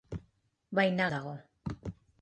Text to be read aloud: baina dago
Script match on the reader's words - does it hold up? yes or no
yes